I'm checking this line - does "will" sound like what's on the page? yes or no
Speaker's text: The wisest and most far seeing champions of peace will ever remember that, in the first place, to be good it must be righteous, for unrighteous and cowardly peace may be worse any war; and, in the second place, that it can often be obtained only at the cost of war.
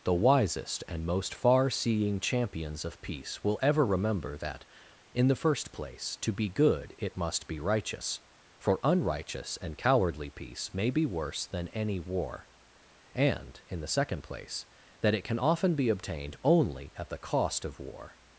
yes